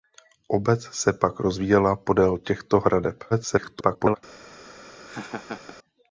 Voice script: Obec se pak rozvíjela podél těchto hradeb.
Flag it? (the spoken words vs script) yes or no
yes